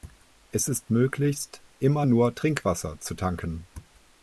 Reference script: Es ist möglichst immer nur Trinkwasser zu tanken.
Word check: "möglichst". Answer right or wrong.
right